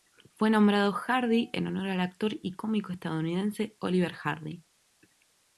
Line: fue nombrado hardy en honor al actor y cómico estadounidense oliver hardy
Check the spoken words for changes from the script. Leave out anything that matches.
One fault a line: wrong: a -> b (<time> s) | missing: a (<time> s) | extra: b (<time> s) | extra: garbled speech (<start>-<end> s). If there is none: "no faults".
no faults